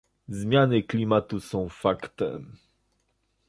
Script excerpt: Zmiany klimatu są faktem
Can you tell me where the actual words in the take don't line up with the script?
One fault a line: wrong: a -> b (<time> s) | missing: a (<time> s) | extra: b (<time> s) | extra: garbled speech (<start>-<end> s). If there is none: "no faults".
no faults